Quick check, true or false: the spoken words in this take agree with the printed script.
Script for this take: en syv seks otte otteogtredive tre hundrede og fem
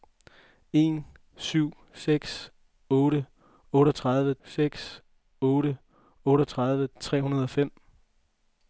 false